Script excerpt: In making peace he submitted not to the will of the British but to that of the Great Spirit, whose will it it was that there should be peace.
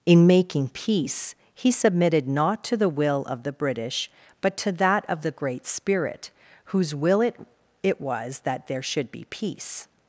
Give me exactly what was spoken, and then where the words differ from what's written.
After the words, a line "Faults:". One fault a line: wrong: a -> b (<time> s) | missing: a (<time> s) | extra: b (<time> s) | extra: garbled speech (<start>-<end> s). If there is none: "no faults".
In making peace he submitted not to the will of the British but to that of the Great Spirit, whose will it it was that there should be peace.
Faults:
no faults